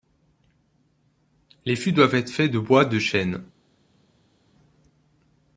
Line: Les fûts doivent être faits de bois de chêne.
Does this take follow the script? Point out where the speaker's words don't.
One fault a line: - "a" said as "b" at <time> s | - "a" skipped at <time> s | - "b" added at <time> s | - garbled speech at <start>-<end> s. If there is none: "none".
none